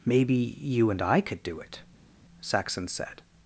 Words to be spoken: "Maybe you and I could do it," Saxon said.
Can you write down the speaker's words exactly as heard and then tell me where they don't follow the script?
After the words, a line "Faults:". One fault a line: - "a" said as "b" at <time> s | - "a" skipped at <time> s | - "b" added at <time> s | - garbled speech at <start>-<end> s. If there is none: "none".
"Maybe you and I could do it," Saxon said.
Faults:
none